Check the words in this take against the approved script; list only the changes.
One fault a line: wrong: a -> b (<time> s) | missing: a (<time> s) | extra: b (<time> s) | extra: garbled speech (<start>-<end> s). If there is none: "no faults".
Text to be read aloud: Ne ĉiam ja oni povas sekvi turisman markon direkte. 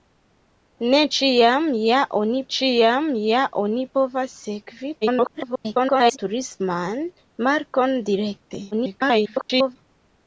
extra: ĉiam ja oni (2.6 s)
extra: garbled speech (5.0-6.2 s)
extra: garbled speech (8.7-9.8 s)